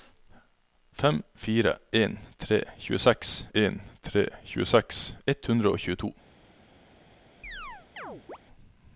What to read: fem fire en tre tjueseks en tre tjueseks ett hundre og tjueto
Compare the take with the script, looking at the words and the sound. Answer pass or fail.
fail